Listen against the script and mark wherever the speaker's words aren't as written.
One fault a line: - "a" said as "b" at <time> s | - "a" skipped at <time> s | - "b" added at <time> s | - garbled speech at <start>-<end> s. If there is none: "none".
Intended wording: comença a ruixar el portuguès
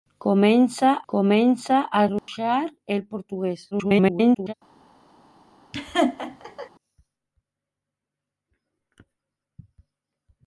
- "comença" added at 1.1 s
- garbled speech at 3.7-4.5 s